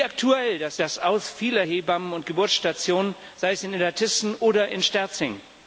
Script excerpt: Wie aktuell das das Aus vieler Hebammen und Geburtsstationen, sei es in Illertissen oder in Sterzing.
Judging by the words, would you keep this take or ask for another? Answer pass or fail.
pass